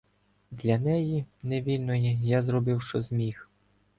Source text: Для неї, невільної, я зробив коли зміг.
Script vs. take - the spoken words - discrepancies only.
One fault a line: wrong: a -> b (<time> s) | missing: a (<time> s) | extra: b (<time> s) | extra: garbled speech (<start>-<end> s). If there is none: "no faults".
wrong: коли -> що (2.8 s)